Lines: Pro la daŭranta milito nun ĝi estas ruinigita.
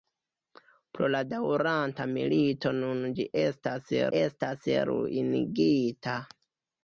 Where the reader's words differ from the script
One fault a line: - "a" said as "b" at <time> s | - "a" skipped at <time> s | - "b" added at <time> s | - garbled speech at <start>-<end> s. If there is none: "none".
- "estas" added at 4.2 s